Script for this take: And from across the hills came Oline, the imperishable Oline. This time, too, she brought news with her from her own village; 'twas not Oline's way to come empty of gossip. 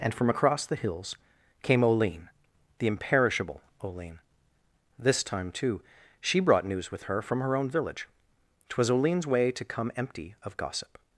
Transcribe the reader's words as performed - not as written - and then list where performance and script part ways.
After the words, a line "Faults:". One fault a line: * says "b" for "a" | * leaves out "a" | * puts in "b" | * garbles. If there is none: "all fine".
And from across the hills came Oline, the imperishable Oline. This time, too, she brought news with her from her own village; 'twas Oline's way to come empty of gossip.
Faults:
* leaves out "not"